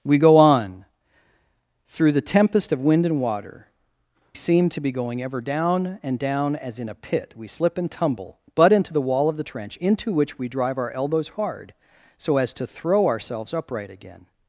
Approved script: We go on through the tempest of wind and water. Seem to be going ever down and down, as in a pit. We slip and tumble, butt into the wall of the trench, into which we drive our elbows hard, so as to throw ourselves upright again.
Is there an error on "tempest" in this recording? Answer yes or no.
no